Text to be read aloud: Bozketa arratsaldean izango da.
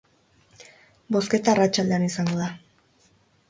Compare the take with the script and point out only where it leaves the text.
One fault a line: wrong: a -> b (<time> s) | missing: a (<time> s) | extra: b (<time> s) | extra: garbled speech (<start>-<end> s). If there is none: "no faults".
no faults